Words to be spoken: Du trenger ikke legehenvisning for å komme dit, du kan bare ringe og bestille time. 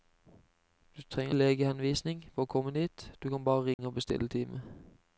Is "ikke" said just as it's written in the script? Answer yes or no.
no